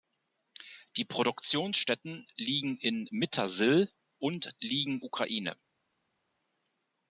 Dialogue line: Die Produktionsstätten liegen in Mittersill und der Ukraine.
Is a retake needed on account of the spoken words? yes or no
yes